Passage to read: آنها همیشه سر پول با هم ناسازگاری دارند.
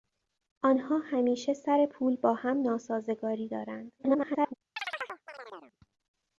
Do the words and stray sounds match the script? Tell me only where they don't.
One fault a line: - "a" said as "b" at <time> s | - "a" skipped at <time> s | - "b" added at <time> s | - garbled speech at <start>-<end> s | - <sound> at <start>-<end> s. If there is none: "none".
- garbled speech at 4.0-4.5 s
- chirp at 4.8-5.8 s